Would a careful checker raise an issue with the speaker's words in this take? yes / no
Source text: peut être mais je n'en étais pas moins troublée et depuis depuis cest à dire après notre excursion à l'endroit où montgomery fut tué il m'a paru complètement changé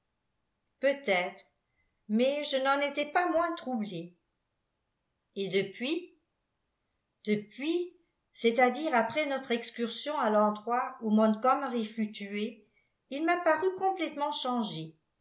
no